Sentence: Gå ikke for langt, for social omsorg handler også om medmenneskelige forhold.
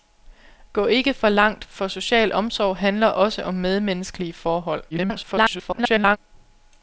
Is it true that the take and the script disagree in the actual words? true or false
true